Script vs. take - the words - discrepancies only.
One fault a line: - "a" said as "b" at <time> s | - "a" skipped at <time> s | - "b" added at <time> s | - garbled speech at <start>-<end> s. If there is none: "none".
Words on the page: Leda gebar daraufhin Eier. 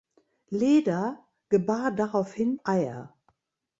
none